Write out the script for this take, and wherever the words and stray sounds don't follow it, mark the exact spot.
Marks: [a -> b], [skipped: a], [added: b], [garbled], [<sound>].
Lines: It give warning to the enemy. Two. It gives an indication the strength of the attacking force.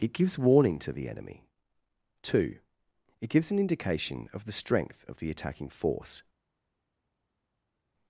It [give -> gives] warning to the enemy. Two. It gives an indication [added: of] the strength of the attacking force.